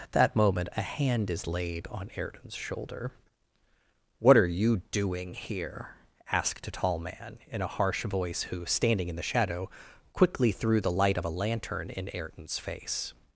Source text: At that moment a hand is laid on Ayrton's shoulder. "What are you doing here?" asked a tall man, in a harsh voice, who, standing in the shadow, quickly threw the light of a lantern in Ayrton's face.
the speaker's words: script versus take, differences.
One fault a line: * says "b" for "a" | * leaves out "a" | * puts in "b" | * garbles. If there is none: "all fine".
all fine